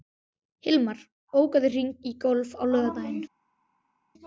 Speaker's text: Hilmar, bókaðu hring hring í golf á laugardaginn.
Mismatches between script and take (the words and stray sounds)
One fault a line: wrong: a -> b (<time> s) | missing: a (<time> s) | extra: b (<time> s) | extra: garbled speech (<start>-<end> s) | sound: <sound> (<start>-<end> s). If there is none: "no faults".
missing: hring (1.9 s)